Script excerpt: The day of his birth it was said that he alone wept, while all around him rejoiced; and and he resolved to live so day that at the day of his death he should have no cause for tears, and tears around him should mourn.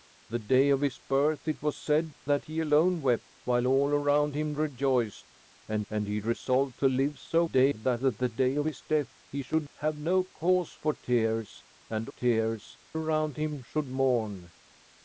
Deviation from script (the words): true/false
false